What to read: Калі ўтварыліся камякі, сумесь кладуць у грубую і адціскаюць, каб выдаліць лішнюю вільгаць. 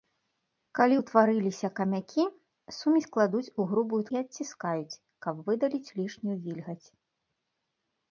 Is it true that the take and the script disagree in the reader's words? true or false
false